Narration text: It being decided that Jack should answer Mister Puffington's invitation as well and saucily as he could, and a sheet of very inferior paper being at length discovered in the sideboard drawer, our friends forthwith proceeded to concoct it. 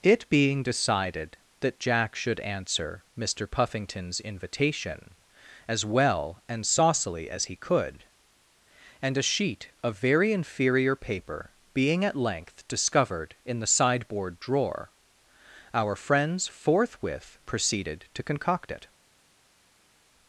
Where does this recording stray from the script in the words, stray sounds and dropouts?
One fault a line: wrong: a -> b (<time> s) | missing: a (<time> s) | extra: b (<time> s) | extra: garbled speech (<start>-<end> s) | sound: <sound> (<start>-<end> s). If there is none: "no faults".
no faults